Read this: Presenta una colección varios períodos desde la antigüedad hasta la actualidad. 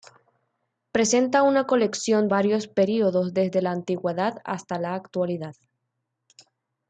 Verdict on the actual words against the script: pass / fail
pass